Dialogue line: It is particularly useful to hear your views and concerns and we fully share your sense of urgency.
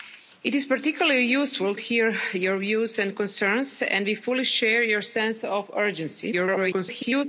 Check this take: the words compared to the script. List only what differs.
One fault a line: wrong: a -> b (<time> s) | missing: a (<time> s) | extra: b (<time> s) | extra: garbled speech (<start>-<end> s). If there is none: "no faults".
missing: to (1.8 s)
extra: garbled speech (6.3-7.3 s)